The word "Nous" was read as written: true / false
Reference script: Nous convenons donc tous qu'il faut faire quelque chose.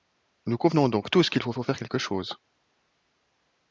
true